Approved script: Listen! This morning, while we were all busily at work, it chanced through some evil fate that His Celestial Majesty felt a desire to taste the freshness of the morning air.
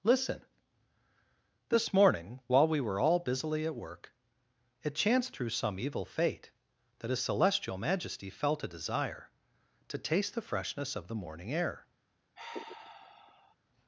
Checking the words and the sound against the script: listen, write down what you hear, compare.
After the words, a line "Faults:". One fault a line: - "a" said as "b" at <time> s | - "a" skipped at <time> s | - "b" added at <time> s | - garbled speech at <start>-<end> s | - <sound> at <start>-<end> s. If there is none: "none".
Listen! This morning, while we were all busily at work, it chanced through some evil fate that His Celestial Majesty felt a desire to taste the freshness of the morning air.
Faults:
- sigh at 12.4-13.6 s